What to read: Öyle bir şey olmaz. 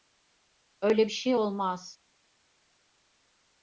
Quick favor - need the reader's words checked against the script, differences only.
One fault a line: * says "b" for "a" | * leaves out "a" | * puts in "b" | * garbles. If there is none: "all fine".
all fine